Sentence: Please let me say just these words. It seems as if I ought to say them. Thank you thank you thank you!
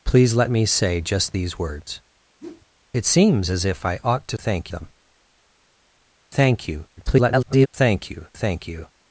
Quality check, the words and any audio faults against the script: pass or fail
fail